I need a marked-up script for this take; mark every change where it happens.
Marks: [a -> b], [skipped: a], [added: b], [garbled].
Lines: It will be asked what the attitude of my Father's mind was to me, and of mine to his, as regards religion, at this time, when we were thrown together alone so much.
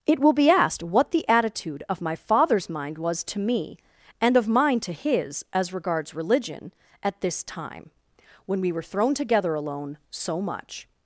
It will be asked what the attitude of my Father's mind was to me, and of mine to his, as regards religion, at this time, when we were thrown together alone so much.